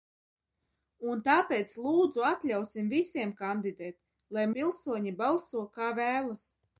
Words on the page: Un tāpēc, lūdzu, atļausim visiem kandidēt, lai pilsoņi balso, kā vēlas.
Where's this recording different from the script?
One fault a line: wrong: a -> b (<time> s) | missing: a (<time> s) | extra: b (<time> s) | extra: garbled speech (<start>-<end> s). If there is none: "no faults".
no faults